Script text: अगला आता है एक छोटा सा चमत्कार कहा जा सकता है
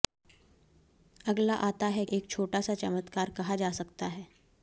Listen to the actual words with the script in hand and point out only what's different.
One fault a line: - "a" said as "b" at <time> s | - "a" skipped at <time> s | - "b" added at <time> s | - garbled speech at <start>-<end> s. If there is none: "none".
none